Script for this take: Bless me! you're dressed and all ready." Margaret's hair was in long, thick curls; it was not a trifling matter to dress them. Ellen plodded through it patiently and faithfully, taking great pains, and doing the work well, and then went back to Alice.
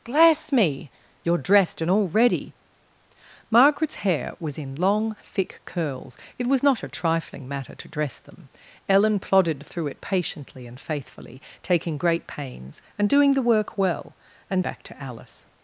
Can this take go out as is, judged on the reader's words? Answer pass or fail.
fail